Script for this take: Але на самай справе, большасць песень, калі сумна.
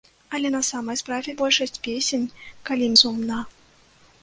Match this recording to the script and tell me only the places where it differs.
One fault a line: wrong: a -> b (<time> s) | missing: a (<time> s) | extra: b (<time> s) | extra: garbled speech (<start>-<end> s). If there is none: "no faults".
no faults